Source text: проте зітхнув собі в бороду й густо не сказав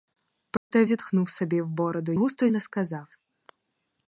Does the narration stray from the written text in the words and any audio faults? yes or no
yes